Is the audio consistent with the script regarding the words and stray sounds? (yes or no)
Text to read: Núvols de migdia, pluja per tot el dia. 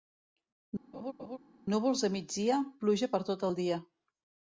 no